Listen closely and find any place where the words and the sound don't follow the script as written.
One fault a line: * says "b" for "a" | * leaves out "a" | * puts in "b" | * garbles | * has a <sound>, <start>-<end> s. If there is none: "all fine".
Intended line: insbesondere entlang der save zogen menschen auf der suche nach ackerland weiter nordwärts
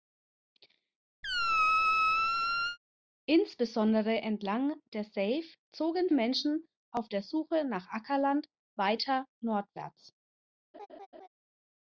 * has a squeak, 1.2-2.8 s
* has a laugh, 10.7-11.3 s